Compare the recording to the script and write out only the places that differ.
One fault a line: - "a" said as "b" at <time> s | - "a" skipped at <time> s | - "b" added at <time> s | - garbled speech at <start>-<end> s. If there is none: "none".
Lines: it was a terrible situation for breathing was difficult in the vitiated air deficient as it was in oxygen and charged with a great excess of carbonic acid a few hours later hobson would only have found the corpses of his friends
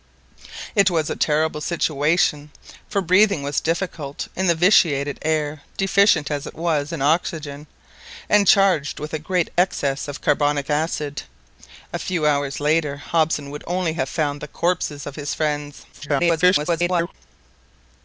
- garbled speech at 15.9-17.1 s